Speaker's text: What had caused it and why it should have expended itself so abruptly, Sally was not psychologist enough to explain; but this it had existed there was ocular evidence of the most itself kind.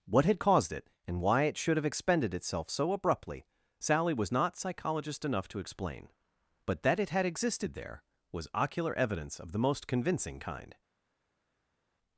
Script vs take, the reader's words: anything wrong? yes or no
yes